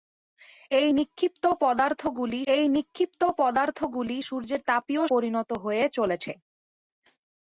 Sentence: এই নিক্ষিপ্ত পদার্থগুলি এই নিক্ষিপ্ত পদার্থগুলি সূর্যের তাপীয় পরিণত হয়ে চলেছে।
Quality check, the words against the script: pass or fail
pass